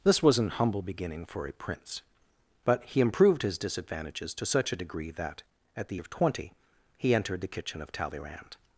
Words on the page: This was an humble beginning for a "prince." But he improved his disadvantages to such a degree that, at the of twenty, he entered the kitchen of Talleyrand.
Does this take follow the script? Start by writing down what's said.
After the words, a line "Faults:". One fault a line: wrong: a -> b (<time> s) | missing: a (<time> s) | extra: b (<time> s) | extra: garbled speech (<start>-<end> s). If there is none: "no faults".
This was an humble beginning for a "prince." But he improved his disadvantages to such a degree that, at the of twenty, he entered the kitchen of Talleyrand.
Faults:
no faults